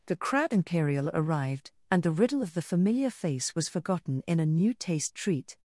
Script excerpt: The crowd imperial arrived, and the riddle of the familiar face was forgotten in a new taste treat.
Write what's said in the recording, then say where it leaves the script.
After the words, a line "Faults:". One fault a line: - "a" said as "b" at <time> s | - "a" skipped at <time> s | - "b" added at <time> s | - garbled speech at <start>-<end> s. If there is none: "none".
The crowd imperial arrived, and the riddle of the familiar face was forgotten in a new taste treat.
Faults:
none